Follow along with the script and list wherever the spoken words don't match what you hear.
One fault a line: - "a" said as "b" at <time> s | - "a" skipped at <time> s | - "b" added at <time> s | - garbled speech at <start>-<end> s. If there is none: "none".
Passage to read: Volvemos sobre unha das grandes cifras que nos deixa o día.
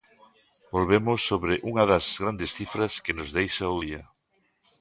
none